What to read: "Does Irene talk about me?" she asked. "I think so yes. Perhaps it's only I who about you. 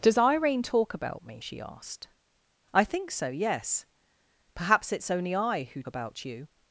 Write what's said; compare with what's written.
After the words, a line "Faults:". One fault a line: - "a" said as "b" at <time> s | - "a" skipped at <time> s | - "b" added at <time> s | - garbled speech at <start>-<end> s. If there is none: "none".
"Does Irene talk about me?" she asked. "I think so yes. Perhaps it's only I who about you.
Faults:
none